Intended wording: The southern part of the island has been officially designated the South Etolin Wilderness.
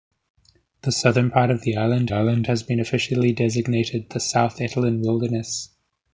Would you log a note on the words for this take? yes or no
yes